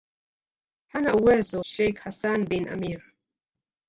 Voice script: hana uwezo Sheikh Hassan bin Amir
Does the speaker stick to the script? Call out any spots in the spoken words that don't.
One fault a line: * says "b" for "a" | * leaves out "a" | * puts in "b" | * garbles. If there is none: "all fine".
all fine